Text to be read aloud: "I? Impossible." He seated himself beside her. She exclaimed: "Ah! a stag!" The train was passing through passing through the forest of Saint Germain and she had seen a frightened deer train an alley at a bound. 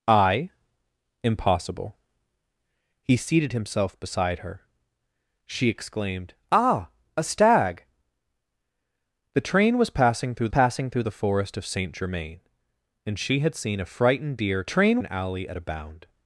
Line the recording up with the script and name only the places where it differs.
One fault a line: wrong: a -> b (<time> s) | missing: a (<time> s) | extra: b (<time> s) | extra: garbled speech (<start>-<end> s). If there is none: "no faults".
no faults